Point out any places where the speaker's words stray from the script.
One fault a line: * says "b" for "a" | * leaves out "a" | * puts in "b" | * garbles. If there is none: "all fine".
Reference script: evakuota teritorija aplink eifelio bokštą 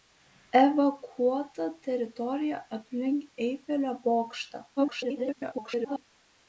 * garbles